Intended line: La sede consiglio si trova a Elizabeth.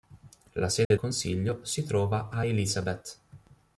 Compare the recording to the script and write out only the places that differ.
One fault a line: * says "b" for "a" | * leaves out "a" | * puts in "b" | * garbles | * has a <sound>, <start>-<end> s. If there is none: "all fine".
* has a dropout, 0.8-0.9 s